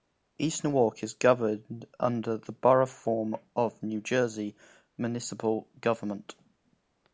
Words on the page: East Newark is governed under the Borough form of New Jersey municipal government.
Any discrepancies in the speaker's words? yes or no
no